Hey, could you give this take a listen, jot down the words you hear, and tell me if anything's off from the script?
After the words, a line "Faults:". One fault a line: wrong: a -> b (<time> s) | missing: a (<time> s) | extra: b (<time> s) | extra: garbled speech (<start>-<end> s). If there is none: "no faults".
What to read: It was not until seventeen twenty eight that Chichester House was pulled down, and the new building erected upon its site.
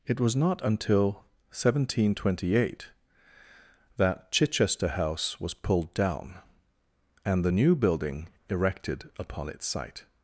It was not until seventeen twenty eight that Chichester House was pulled down, and the new building erected upon its site.
Faults:
no faults